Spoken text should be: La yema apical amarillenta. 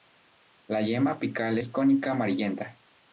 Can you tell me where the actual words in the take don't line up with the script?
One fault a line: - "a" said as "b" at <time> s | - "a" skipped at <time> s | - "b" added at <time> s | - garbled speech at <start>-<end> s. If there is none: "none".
- "es cónica" added at 1.6 s